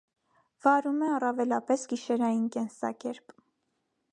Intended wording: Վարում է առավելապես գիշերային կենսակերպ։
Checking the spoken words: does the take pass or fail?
pass